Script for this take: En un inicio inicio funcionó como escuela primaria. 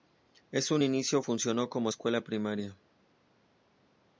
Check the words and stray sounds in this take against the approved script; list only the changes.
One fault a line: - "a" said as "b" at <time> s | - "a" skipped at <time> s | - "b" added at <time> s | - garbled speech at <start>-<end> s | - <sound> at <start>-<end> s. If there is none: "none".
- "inicio" skipped at 1.2 s